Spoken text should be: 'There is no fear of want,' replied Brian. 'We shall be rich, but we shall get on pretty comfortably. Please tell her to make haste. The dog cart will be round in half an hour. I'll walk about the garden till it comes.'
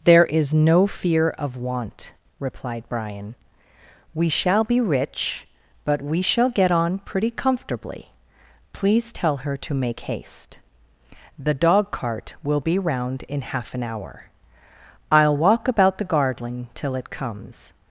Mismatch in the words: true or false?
false